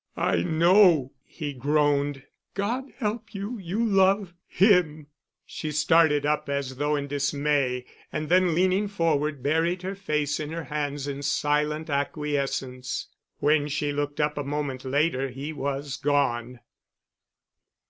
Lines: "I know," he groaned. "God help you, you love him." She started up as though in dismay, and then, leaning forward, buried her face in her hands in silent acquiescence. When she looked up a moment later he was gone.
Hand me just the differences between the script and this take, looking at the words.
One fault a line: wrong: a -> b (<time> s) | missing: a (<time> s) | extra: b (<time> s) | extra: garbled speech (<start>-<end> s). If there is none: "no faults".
no faults